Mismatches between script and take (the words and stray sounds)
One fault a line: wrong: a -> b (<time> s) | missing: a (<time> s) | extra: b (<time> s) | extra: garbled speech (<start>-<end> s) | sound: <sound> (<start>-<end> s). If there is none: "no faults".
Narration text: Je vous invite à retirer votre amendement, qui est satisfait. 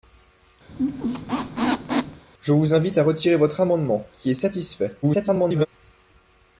sound: squeak (0.7-2.2 s)
extra: garbled speech (5.0-5.7 s)